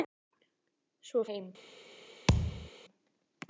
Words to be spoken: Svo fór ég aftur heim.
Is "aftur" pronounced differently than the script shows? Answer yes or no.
yes